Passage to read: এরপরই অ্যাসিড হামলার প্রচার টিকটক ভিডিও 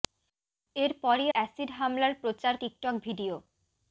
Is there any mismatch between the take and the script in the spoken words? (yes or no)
no